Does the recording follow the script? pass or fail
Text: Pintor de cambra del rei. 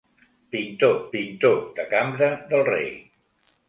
fail